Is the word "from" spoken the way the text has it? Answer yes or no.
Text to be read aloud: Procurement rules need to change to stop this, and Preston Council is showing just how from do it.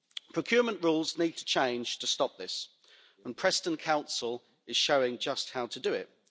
no